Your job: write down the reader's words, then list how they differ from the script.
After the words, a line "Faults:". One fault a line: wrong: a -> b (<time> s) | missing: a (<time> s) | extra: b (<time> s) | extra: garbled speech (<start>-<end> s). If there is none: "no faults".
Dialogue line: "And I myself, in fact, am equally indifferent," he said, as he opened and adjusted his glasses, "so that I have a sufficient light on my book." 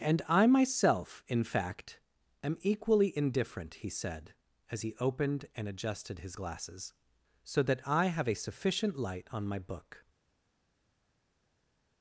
"And I myself, in fact, am equally indifferent," he said, as he opened and adjusted his glasses, "so that I have a sufficient light on my book."
Faults:
no faults